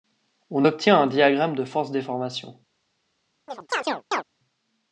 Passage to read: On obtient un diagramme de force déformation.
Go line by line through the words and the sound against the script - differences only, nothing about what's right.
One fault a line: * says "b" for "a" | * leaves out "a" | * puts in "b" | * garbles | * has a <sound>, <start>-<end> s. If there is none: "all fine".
* has a chirp, 3.5-4.2 s